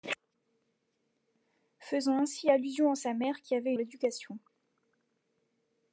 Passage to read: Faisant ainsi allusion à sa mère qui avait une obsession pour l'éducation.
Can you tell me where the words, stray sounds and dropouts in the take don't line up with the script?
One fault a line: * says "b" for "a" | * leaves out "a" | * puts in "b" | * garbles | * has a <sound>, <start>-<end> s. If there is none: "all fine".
* leaves out "une obsession pour"